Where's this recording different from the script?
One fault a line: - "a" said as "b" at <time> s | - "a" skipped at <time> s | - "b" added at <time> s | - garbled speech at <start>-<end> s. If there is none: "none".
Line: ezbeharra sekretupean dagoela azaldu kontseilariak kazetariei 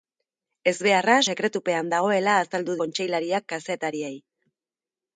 none